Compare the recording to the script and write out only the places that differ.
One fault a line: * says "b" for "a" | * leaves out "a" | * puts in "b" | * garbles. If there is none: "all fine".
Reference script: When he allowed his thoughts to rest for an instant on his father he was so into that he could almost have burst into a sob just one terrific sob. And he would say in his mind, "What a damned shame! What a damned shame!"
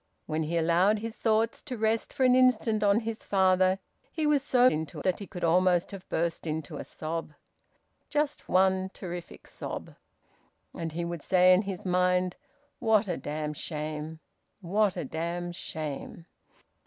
all fine